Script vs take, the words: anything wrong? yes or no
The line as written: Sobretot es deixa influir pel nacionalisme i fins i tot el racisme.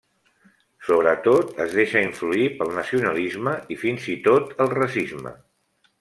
no